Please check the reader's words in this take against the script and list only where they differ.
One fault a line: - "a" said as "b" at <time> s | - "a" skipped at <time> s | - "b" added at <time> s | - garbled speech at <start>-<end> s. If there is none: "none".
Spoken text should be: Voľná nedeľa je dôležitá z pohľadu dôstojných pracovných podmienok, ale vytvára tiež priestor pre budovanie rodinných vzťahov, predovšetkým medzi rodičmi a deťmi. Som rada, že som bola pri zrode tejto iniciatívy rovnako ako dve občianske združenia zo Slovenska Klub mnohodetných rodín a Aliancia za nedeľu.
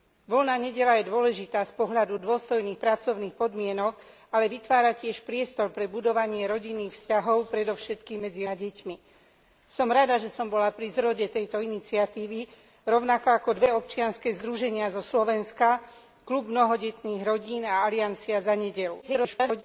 - "rodičmi" skipped at 8.5 s
- garbled speech at 19.0-19.6 s